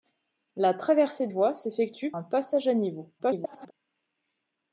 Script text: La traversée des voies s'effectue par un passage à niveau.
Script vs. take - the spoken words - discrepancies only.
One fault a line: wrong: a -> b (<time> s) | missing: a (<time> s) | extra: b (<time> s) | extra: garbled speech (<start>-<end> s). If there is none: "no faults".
missing: des (1.3 s)
missing: par (2.1 s)
extra: garbled speech (3.2-3.7 s)